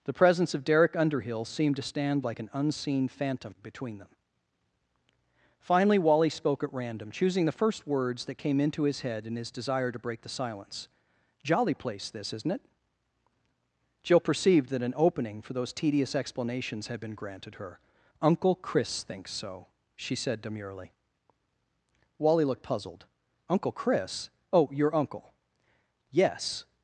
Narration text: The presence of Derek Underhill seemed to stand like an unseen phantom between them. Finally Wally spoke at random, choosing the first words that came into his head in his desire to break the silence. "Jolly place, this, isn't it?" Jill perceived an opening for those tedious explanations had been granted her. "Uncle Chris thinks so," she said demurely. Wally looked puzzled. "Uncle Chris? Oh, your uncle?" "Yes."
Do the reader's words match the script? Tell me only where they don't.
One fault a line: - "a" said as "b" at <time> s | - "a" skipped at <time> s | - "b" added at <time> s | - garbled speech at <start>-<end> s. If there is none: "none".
- "that" added at 14.7 s